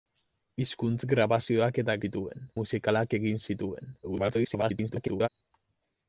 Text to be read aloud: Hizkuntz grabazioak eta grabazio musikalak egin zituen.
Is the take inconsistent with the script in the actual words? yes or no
yes